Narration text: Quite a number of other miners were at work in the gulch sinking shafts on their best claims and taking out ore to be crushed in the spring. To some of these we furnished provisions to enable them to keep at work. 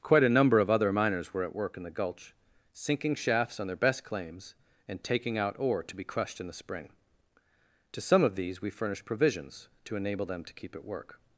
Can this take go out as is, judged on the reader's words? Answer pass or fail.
pass